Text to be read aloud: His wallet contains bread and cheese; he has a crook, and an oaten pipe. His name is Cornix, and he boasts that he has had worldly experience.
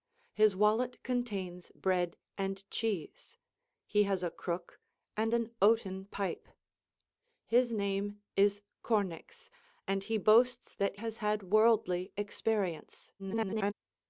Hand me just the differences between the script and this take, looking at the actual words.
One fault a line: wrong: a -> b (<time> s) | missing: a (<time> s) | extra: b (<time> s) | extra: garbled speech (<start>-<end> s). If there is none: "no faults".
missing: he (10.9 s)
extra: garbled speech (13.2-13.7 s)